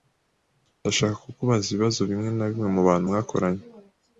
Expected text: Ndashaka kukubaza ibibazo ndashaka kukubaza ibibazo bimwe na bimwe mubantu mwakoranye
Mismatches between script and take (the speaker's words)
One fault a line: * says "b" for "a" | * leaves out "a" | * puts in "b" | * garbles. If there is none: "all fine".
* leaves out "ndashaka kukubaza ibibazo"